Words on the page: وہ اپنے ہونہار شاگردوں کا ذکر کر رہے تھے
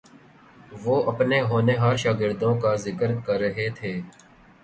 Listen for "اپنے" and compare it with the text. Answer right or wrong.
right